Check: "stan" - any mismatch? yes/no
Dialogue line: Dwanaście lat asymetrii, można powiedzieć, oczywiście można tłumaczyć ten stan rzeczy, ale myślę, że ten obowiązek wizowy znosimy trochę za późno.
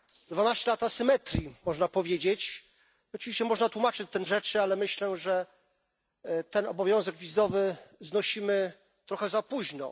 yes